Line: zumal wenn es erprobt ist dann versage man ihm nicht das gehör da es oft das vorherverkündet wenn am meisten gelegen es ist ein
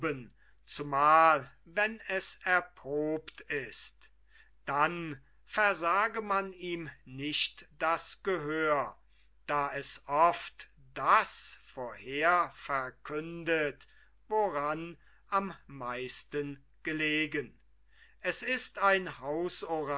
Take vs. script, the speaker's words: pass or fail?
fail